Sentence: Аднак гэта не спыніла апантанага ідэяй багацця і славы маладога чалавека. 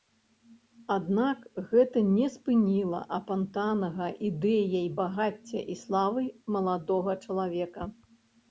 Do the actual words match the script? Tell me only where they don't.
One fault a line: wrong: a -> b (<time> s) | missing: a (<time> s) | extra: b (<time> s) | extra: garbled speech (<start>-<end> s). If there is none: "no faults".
no faults